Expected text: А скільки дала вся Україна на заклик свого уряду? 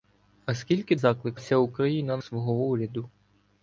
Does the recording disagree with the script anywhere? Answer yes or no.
yes